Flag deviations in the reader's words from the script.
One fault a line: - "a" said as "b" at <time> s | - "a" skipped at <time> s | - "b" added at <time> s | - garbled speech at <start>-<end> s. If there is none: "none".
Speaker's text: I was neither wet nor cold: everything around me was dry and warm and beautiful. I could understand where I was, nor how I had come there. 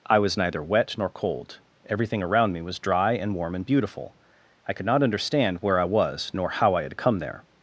- "not" added at 4.9 s